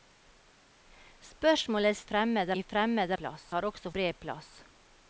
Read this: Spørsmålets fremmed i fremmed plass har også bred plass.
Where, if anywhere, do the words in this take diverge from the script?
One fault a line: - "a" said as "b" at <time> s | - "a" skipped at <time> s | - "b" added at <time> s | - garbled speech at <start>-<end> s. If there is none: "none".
none